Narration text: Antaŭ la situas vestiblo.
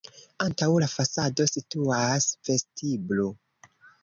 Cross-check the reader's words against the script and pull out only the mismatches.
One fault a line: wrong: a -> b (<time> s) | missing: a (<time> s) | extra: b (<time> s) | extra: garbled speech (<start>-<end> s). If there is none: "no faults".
extra: fasado (0.9 s)